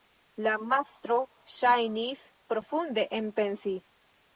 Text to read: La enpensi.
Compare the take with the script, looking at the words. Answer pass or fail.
fail